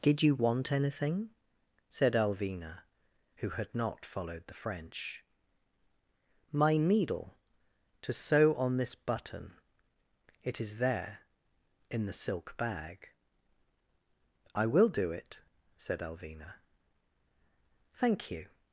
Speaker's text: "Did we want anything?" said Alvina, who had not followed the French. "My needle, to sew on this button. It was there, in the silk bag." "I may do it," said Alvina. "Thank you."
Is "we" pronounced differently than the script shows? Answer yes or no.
yes